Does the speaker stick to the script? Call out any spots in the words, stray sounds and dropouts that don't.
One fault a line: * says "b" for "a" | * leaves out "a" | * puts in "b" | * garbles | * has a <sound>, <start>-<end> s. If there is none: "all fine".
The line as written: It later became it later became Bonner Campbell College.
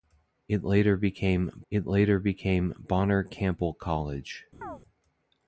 * has a chirp, 4.6-4.8 s